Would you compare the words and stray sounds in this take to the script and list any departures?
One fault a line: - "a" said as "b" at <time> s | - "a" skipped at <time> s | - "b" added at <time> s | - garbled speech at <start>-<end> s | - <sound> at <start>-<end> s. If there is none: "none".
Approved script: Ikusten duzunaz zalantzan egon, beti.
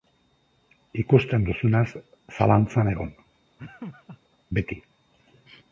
- laugh at 3.6-4.2 s